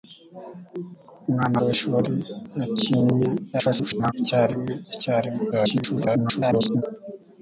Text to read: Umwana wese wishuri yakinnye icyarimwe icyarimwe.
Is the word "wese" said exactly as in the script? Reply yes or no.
no